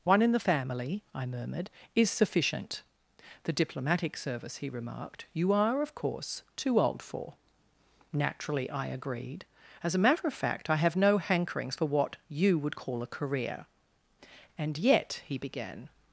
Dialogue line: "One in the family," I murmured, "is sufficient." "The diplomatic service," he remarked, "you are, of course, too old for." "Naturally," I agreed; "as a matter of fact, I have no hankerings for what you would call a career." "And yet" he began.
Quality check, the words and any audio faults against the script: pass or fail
pass